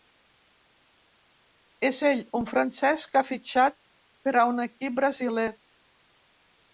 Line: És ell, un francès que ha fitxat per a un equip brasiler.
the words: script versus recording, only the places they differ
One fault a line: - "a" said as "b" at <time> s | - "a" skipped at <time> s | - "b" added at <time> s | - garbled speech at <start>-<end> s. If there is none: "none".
none